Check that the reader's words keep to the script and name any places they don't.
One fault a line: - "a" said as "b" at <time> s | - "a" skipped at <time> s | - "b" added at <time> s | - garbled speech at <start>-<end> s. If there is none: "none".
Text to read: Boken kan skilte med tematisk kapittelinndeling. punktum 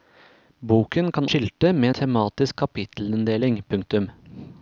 none